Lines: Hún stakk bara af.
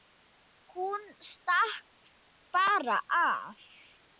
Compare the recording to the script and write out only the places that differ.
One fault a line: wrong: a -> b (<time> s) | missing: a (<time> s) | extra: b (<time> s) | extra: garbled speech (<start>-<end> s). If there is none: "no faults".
no faults